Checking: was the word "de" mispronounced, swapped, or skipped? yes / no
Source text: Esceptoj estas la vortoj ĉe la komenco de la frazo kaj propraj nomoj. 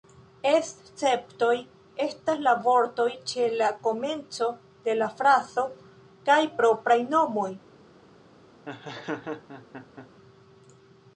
no